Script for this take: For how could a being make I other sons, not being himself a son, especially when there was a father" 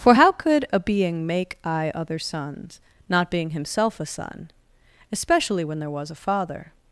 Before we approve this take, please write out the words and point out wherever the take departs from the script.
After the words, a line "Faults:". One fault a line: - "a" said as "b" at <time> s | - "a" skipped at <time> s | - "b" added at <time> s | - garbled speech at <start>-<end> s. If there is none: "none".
For how could a being make I other sons, not being himself a son, especially when there was a father"
Faults:
none